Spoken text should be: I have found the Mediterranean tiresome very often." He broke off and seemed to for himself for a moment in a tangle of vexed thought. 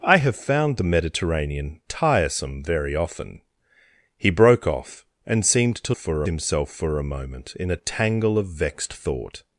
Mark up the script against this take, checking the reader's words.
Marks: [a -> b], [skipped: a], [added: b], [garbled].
I have found the Mediterranean tiresome very often." He broke off and seemed to for himself for a moment in a tangle of vexed thought.